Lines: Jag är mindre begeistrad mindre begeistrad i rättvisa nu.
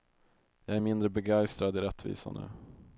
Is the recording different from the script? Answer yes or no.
yes